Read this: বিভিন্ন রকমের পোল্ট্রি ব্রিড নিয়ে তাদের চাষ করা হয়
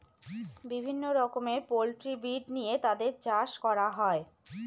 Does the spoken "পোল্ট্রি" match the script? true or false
true